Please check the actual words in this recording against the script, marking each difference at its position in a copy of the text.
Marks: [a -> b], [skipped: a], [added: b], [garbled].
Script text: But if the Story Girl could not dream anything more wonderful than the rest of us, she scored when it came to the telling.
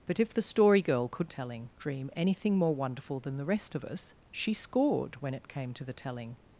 But if the Story Girl could [not -> telling] dream anything more wonderful than the rest of us, she scored when it came to the telling.